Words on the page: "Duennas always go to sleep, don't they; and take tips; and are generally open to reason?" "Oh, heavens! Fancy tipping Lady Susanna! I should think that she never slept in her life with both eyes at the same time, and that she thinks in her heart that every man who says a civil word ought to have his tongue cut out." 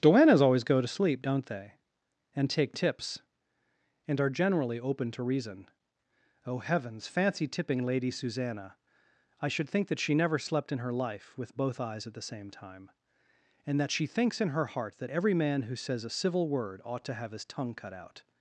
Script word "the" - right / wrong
right